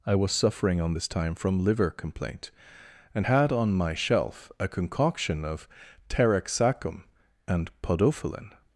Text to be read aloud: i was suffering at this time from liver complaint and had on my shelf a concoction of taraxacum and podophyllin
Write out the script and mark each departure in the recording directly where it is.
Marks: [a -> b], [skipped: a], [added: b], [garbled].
i was suffering [at -> on] this time from liver complaint and had on my shelf a concoction of taraxacum and podophyllin